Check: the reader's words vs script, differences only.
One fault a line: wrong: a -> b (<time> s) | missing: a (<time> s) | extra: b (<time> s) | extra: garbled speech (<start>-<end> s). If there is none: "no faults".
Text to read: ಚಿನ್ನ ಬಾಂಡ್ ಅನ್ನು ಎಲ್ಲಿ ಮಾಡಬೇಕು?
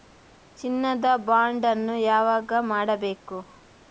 extra: ದ (1.0 s)
wrong: ಎಲ್ಲಿ -> ಯಾವಾಗ (2.0 s)